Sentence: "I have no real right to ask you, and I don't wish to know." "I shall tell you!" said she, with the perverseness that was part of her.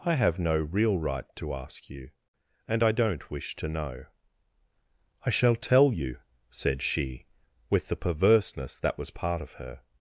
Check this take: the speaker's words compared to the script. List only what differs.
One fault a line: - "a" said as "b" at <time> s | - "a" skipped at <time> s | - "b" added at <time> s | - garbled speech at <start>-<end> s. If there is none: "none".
none